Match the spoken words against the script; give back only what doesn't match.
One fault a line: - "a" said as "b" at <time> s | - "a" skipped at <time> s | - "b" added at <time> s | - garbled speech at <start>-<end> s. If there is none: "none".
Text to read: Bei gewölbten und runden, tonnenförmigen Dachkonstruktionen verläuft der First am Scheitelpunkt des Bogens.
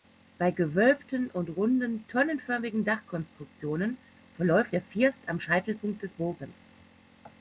none